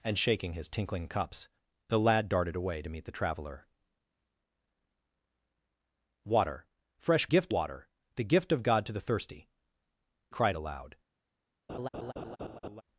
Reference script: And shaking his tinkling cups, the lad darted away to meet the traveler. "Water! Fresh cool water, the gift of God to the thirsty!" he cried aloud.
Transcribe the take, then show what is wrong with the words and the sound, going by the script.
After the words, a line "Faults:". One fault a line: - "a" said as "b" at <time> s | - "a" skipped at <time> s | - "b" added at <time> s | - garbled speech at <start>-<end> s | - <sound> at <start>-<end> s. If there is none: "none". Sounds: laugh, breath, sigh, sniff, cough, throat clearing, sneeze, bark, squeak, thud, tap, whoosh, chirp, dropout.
And shaking his tinkling cups, the lad darted away to meet the traveler. "Water! Fresh gift water, the gift of God to the thirsty!" cried aloud.
Faults:
- "cool" said as "gift" at 7.3 s
- "he" skipped at 9.5 s
- laugh at 11.7-12.8 s